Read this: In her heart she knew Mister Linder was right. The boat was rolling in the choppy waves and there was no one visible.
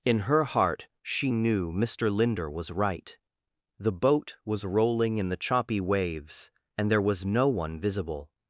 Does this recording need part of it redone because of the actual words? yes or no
no